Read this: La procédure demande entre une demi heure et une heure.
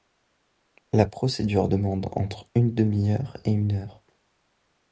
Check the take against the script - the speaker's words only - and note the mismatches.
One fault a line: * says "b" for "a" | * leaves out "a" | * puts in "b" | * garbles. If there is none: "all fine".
all fine